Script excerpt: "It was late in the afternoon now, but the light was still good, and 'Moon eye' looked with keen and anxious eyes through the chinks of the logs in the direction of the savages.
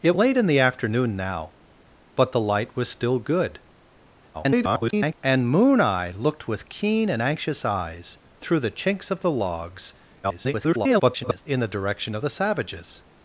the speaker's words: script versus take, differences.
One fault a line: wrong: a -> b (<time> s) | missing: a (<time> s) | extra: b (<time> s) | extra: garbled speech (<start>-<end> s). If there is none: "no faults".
missing: was (0.1 s)
extra: garbled speech (4.3-5.1 s)
extra: garbled speech (10.2-11.4 s)